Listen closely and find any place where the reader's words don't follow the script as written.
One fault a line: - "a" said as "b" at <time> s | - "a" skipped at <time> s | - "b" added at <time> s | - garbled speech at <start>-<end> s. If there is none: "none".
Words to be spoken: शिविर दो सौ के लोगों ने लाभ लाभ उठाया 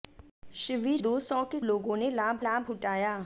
none